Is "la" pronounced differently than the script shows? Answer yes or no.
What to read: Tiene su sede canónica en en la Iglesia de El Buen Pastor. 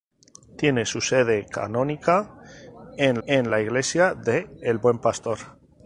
no